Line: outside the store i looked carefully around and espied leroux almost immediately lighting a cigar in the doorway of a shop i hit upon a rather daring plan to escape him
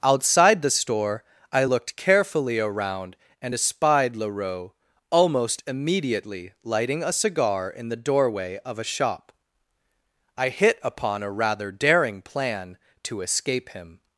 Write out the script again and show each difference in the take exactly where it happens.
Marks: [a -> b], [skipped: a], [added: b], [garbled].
outside the store i looked carefully around and espied leroux almost immediately lighting a cigar in the doorway of a shop i hit upon a rather daring plan to escape him